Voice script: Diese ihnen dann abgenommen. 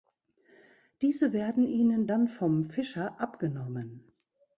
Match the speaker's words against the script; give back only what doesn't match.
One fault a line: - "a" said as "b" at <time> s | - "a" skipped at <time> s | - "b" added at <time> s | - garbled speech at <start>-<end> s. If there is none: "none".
- "werden" added at 1.3 s
- "vom Fischer" added at 2.3 s